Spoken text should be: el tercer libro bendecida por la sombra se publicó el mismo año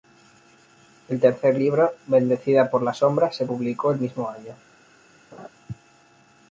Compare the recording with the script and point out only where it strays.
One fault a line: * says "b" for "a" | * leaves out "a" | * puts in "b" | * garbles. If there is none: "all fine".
all fine